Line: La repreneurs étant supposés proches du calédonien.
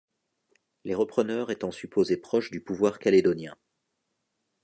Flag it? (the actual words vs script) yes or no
yes